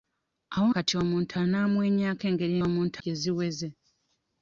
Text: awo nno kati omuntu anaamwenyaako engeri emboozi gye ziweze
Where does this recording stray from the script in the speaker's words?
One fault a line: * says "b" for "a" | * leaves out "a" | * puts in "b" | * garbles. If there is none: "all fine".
* leaves out "nno"
* says "omuntu" for "emboozi"